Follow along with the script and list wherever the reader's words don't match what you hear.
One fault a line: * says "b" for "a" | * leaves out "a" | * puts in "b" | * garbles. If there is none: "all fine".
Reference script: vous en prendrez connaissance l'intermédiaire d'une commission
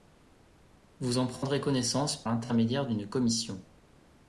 all fine